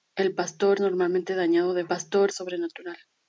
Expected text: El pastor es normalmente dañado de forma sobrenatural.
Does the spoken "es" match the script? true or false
false